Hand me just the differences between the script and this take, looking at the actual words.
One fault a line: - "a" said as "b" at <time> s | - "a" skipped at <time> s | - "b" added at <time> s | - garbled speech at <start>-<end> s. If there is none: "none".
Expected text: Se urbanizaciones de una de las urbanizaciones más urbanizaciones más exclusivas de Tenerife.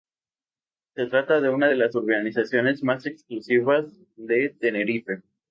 - "urbanizaciones" said as "trata" at 1.0 s
- "urbanizaciones más" skipped at 3.1 s